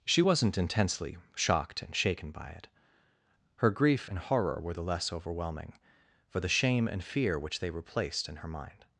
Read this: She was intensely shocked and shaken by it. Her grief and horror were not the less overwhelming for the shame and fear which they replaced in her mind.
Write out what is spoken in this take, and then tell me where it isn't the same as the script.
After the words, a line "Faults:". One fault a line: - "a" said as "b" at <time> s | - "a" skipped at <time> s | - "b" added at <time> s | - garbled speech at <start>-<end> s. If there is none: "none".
She wasn't intensely shocked and shaken by it. Her grief and horror were the less overwhelming for the shame and fear which they replaced in her mind.
Faults:
- "was" said as "wasn't" at 0.2 s
- "not" skipped at 4.7 s